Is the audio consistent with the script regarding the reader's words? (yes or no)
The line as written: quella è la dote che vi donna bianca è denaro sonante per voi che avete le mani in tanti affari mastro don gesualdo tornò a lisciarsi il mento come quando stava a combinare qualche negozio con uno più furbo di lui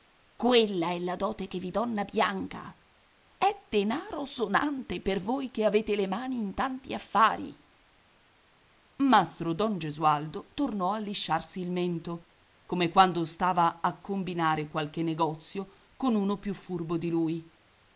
yes